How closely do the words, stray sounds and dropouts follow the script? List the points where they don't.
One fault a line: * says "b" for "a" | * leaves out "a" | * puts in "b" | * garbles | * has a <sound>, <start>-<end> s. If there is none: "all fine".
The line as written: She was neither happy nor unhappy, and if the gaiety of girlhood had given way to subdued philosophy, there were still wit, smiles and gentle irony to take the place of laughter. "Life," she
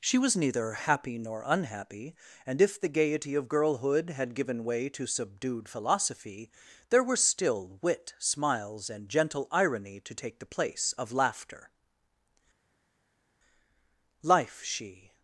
all fine